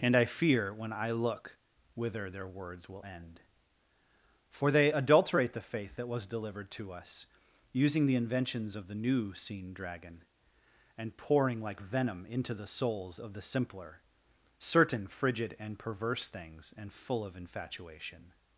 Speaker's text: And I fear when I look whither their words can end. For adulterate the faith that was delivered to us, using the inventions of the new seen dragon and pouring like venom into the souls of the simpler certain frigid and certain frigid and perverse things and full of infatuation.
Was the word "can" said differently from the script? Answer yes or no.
yes